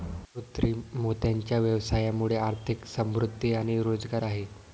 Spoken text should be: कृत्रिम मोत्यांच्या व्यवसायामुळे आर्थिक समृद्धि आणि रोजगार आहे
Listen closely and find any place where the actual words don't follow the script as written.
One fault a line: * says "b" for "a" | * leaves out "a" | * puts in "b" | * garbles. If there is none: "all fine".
all fine